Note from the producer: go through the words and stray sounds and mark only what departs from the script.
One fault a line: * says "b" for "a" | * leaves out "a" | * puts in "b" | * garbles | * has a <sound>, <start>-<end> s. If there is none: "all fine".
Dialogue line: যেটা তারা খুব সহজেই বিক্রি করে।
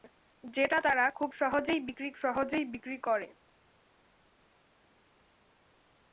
* puts in "সহজেই বিক্রি"